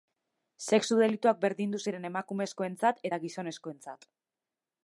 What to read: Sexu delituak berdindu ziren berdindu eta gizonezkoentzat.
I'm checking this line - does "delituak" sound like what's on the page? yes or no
yes